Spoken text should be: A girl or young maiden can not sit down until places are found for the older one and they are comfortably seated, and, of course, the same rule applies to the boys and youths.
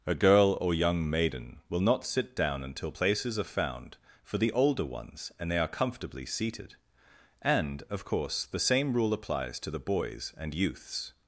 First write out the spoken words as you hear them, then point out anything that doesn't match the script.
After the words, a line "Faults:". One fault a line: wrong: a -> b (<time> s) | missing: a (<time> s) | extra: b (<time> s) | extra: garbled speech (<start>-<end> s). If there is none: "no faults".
A girl or young maiden will not sit down until places are found for the older ones and they are comfortably seated, and, of course, the same rule applies to the boys and youths.
Faults:
wrong: can -> will (1.7 s)
wrong: one -> ones (4.8 s)